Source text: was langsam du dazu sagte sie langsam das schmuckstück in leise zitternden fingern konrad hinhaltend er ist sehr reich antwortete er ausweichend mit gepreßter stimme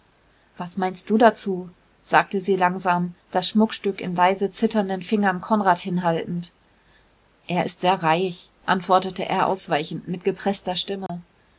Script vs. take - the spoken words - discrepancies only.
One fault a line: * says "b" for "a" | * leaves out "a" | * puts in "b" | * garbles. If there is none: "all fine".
* says "meinst" for "langsam"